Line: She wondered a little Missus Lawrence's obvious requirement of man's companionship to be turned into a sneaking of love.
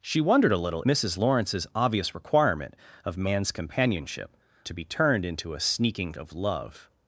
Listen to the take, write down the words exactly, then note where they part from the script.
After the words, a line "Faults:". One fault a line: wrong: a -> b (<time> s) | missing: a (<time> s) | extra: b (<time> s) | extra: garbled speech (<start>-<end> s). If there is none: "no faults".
She wondered a little Missus Lawrence's obvious requirement of man's companionship to be turned into a sneaking of love.
Faults:
no faults